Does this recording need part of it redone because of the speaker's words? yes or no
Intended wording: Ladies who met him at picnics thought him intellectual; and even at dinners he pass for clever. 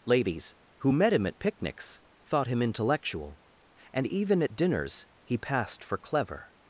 yes